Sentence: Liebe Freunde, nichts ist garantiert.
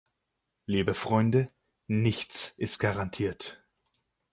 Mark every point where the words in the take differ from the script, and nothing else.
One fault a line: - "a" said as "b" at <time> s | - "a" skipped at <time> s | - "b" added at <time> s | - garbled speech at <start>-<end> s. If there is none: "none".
none